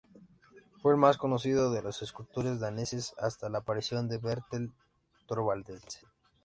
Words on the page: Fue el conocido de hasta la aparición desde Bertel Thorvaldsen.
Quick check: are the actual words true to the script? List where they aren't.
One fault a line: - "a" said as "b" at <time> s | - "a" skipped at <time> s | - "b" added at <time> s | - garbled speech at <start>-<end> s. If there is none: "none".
- "más" added at 1.0 s
- "los escultores daneses" added at 1.8 s
- "desde" said as "de" at 4.1 s